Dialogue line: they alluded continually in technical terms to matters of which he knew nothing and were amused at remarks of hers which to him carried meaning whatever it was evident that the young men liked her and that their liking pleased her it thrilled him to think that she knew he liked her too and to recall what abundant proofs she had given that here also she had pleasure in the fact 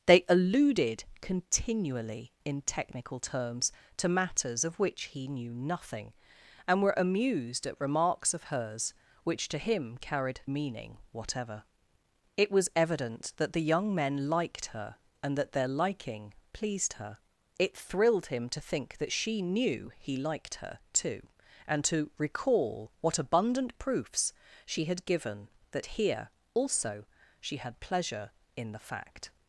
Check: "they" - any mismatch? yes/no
no